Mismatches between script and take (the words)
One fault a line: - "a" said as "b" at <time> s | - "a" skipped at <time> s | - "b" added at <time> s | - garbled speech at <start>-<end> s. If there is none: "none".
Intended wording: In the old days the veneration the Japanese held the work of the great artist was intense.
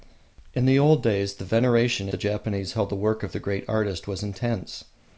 none